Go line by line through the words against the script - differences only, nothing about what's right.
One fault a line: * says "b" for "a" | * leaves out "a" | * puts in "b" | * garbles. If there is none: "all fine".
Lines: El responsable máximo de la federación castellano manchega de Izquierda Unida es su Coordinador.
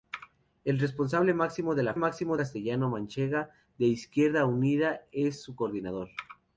* says "máximo" for "federación"